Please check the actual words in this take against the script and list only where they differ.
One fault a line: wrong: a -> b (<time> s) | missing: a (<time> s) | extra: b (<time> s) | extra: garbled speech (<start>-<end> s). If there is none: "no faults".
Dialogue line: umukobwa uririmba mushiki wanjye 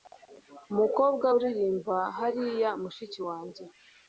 extra: hariya (2.2 s)